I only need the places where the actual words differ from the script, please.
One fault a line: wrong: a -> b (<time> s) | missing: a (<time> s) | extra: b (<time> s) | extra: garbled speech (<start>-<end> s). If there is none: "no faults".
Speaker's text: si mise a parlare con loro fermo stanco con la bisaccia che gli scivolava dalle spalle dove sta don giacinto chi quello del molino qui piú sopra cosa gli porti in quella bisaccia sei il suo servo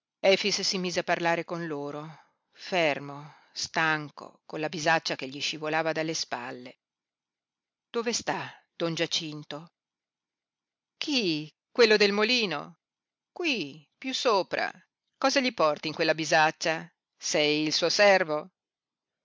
no faults